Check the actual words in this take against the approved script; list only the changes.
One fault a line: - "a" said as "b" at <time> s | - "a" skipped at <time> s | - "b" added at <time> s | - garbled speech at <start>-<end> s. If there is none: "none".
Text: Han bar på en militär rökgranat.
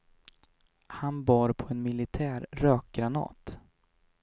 none